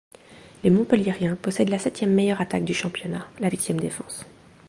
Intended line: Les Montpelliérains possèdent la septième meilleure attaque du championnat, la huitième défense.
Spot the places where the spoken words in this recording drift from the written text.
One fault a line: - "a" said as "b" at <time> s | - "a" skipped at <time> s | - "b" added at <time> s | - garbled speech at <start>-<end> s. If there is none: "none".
none